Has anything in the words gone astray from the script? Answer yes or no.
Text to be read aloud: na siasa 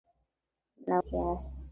no